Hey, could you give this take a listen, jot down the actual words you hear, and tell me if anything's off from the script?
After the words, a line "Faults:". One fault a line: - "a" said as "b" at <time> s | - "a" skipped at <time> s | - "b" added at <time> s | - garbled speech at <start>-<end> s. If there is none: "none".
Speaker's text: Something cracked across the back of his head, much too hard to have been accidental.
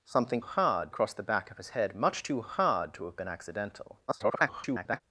Something hard across the back of his head, much too hard to have been accidental. [garbled]
Faults:
- "cracked" said as "hard" at 0.4 s
- garbled speech at 4.1-5.0 s